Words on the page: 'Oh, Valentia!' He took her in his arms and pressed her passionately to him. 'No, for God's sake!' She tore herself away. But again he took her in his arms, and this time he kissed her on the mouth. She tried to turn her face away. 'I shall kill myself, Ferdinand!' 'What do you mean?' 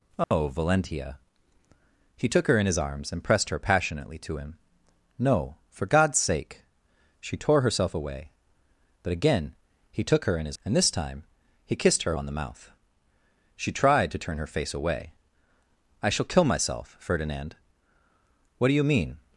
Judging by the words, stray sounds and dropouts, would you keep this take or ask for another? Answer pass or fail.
fail